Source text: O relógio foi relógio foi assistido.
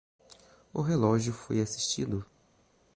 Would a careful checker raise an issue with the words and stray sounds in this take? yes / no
yes